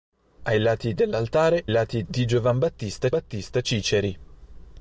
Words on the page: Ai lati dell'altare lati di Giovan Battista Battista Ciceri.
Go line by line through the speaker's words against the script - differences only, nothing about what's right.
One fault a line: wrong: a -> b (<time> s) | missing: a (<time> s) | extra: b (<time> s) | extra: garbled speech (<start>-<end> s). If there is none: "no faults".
no faults